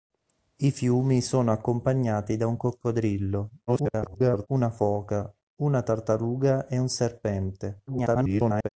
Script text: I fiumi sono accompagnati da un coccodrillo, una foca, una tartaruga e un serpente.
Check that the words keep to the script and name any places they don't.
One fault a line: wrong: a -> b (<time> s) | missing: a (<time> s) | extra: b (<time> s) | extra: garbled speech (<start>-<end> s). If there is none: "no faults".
extra: garbled speech (3.7-4.5 s)
extra: garbled speech (7.9-8.7 s)